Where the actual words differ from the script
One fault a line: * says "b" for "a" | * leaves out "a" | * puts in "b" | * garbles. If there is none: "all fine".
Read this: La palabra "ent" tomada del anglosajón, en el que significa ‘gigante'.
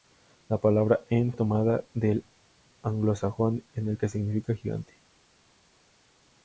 all fine